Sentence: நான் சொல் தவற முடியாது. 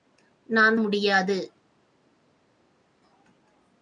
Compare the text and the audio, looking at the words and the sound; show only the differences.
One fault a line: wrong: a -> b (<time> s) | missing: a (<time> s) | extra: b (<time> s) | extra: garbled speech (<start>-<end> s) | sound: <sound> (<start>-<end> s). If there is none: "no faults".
missing: சொல் தவற (0.8 s)